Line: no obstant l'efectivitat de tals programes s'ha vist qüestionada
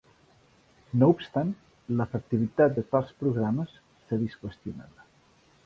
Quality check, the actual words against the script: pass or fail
pass